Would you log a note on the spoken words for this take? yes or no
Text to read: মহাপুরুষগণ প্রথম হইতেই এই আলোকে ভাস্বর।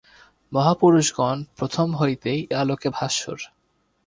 yes